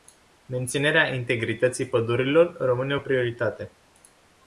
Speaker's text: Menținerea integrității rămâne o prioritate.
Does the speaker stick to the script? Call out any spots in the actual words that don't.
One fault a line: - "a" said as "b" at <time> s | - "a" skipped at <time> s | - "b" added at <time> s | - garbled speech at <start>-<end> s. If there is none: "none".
- "pădurilor" added at 1.9 s